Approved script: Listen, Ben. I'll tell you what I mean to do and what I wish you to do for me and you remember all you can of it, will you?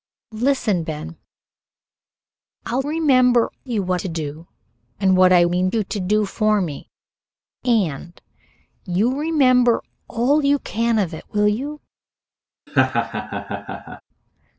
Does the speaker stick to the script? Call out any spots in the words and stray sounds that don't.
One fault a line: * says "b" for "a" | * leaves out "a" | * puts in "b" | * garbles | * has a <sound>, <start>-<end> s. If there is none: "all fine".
* says "remember" for "tell"
* leaves out "I mean"
* says "mean" for "wish"
* has a laugh, 12.7-14.0 s